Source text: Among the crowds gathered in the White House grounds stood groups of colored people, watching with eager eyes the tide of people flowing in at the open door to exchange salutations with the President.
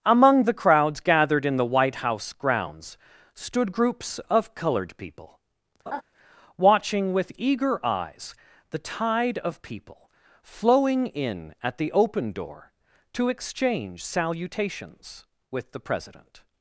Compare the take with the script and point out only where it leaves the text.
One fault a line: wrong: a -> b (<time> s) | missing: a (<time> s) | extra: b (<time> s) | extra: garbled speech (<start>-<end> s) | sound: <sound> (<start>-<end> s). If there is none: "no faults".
sound: laugh (5.9-6.0 s)